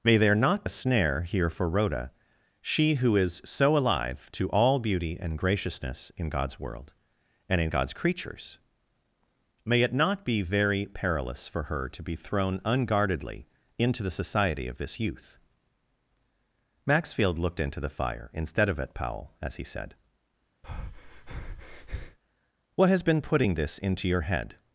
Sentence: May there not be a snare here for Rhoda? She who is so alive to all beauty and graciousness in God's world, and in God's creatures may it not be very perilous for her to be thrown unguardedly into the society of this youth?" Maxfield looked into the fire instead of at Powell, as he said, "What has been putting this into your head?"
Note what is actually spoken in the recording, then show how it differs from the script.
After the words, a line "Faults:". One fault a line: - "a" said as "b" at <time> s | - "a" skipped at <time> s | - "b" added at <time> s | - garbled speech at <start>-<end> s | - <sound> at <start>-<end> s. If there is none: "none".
May there not a snare here for Rhoda? She who is so alive to all beauty and graciousness in God's world, and in God's creatures may it not be very perilous for her to be thrown unguardedly into the society of this youth?" Maxfield looked into the fire instead of at Powell, as he said, "What has been putting this into your head?"
Faults:
- "be" skipped at 0.7 s
- breath at 20.6-22.2 s